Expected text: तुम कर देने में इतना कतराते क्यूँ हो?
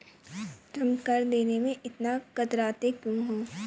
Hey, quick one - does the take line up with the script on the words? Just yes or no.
yes